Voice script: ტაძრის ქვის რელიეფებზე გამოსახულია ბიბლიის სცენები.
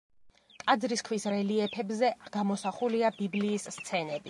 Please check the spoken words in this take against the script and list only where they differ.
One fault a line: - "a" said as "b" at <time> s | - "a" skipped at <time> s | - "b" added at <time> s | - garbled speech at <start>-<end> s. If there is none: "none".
none